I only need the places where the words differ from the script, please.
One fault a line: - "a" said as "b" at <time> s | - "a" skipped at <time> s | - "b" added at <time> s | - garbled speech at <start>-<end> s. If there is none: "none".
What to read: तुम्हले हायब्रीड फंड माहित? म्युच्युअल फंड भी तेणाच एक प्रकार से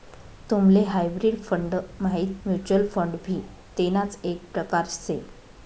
none